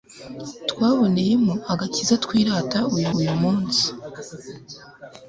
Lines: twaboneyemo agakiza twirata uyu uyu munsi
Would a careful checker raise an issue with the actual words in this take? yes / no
no